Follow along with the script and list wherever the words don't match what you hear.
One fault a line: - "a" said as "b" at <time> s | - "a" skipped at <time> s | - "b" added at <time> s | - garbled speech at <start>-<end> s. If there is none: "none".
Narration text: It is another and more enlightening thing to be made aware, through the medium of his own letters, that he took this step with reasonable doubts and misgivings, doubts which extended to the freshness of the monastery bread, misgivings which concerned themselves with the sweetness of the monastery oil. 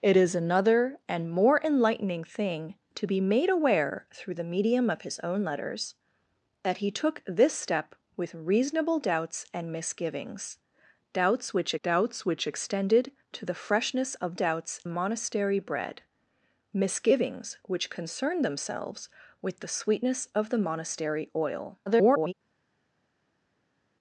- "doubts which" added at 11.8 s
- "the" said as "doubts" at 14.3 s
- garbled speech at 21.9-22.3 s